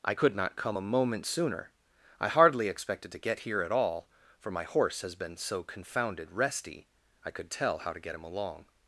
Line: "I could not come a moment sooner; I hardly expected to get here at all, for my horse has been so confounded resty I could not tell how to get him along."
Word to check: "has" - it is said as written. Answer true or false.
true